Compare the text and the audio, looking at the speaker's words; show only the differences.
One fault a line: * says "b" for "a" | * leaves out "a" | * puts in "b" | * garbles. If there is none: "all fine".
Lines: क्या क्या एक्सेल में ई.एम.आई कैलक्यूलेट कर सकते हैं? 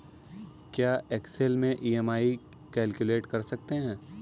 * leaves out "क्या"